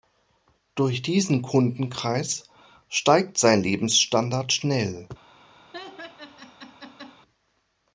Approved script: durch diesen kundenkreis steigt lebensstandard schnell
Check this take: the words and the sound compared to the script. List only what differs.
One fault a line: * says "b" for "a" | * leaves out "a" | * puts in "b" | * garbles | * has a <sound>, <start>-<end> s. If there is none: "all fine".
* puts in "sein"
* has a laugh, 5.7-7.2 s